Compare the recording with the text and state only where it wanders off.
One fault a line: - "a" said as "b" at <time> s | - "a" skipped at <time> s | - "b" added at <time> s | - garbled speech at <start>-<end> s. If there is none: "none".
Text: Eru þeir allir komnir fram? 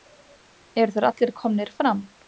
none